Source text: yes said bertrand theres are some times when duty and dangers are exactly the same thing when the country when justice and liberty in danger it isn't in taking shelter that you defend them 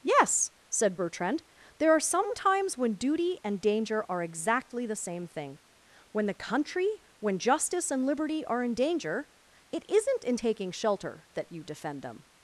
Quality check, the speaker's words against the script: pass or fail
fail